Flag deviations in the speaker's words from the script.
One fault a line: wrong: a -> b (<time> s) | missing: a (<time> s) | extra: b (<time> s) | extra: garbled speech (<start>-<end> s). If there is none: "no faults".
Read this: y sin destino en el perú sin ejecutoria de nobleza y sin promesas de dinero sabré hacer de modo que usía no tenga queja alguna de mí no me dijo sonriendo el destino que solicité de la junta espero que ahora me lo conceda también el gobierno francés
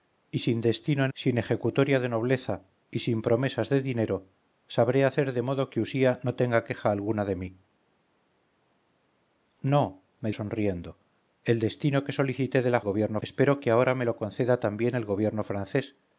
missing: el perú (1.1 s)
missing: dijo (10.3 s)
wrong: junta -> gobierno (12.8 s)